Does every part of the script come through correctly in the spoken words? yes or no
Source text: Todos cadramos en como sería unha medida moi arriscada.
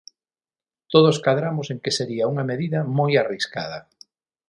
no